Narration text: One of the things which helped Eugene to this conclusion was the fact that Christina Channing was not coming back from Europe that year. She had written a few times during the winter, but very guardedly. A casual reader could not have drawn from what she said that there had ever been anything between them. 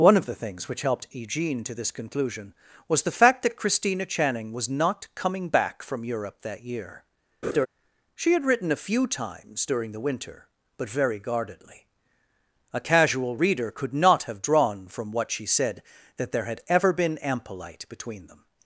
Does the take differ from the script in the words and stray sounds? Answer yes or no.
yes